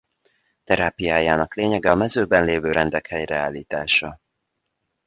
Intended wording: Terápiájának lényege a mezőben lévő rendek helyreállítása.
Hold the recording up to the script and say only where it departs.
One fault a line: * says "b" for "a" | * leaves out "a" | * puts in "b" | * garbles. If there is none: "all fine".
all fine